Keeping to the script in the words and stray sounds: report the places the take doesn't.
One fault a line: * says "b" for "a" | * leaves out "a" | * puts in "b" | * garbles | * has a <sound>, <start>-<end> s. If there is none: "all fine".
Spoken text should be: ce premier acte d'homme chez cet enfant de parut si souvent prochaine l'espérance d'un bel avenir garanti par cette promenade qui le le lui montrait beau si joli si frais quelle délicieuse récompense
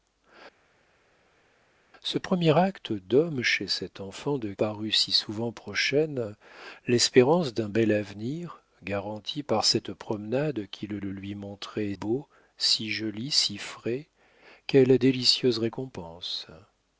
all fine